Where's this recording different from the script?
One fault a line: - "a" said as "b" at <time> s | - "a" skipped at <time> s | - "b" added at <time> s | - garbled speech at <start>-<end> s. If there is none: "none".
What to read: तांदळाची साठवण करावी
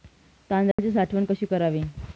- "कशी" added at 1.2 s